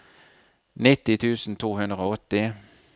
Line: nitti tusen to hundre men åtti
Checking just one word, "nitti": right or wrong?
right